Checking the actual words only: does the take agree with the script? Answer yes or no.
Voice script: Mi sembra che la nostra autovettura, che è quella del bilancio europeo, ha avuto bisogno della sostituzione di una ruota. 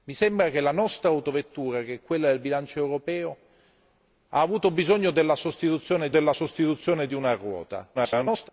no